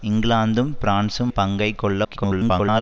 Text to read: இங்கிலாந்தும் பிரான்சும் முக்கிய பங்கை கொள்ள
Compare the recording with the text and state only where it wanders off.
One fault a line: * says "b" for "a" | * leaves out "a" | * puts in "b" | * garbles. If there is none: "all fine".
* leaves out "முக்கிய"
* garbles